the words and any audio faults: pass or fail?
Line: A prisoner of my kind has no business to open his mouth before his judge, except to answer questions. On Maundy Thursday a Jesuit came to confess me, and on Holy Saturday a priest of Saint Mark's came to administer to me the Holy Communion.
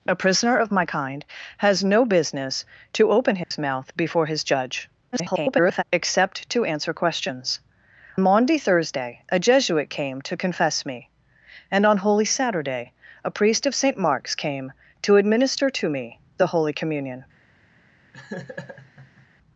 fail